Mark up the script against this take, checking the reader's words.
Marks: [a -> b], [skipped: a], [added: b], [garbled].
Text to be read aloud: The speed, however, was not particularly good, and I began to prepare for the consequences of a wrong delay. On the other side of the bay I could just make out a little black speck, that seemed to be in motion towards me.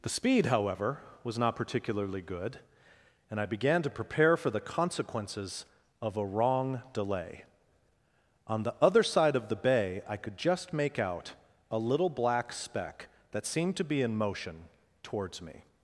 The speed, however, was not particularly good, and I began to prepare for the consequences of a wrong delay. On the other side of the bay I could just make out a little black speck, that seemed to be in motion towards me.